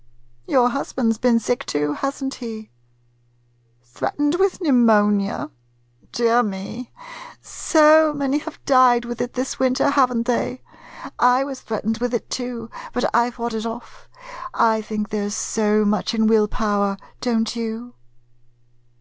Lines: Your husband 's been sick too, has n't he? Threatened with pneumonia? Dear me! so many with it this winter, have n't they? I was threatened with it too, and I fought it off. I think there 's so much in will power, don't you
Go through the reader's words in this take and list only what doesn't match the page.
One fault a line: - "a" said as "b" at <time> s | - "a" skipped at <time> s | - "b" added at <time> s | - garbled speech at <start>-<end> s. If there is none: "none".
- "have died" added at 8.4 s
- "and" said as "but" at 12.9 s